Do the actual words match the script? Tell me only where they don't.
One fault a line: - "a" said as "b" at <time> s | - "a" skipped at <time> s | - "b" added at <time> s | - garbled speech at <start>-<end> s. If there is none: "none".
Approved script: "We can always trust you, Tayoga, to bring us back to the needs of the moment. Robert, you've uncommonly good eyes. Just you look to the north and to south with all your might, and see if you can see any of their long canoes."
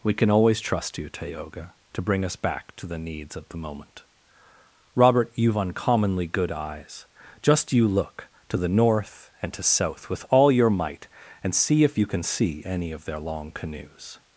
none